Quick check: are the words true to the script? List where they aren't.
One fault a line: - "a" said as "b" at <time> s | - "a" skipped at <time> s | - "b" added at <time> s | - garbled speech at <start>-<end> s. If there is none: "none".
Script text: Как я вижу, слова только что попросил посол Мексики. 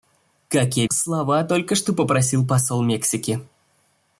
- "вижу" skipped at 0.9 s